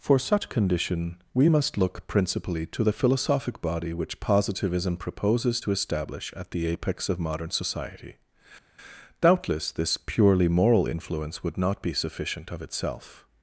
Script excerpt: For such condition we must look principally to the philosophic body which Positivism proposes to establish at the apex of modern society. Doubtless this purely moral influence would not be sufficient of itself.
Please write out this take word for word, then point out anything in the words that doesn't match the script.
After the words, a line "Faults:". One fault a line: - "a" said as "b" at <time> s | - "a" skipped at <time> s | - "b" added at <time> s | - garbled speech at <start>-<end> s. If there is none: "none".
For such condition we must look principally to the philosophic body which Positivism proposes to establish at the apex of modern society. Doubtless this purely moral influence would not be sufficient of itself.
Faults:
none